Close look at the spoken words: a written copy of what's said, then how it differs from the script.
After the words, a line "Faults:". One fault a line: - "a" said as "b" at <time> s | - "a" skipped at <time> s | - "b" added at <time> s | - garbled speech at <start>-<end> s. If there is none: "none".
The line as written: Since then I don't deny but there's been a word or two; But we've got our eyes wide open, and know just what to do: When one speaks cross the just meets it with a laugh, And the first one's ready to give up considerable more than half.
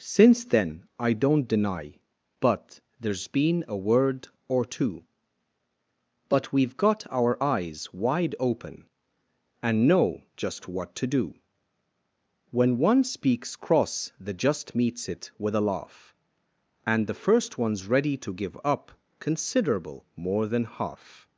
Since then I don't deny but there's been a word or two; But we've got our eyes wide open, and know just what to do: When one speaks cross the just meets it with a laugh, And the first one's ready to give up considerable more than half.
Faults:
none